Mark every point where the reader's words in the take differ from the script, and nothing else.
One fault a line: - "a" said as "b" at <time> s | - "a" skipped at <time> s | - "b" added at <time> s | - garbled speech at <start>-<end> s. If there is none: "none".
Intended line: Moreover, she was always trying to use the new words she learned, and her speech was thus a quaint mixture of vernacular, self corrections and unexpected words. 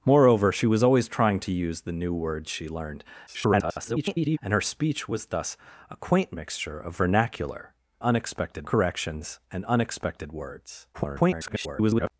- garbled speech at 3.3-4.4 s
- "self" said as "unexpected" at 8.0 s
- garbled speech at 10.9-12.1 s